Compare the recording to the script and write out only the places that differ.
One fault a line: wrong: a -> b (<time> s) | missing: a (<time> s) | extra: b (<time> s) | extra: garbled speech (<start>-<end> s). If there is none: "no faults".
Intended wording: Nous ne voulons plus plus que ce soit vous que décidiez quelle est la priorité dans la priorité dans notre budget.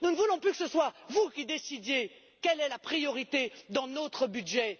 missing: plus (0.5 s)
wrong: que -> qui (1.3 s)
missing: la priorité dans (3.9 s)